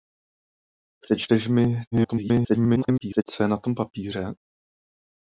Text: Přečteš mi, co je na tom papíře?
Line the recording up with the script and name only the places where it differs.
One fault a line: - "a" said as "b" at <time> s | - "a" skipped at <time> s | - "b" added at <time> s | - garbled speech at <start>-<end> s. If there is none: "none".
- garbled speech at 1.9-3.2 s